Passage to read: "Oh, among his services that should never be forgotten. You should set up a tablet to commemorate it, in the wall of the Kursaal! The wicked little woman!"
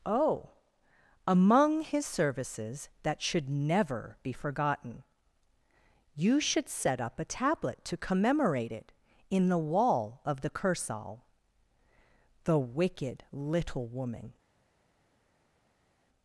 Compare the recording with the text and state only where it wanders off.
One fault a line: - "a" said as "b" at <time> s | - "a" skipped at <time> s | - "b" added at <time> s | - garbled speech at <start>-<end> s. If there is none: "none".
none